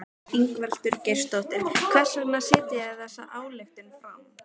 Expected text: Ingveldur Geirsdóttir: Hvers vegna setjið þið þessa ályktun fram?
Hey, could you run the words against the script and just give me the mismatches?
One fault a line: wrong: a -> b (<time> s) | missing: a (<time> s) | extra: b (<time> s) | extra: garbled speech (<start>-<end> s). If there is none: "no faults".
no faults